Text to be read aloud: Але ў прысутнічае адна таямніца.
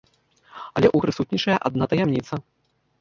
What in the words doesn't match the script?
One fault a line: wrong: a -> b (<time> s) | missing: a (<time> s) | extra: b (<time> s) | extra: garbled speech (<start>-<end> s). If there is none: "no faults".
no faults